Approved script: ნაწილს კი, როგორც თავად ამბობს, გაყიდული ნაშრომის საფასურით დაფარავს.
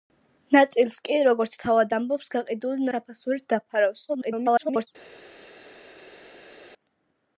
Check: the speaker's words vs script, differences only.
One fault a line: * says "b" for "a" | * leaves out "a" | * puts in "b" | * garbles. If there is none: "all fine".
* leaves out "ნაშრომის"
* garbles